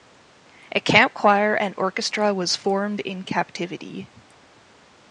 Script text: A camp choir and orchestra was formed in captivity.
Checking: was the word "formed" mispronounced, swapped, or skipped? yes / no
no